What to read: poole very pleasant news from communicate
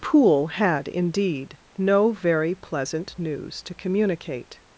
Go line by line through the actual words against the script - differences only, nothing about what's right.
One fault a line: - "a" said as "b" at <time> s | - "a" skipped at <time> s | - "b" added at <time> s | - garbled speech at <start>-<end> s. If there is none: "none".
- "had indeed no" added at 0.5 s
- "from" said as "to" at 3.6 s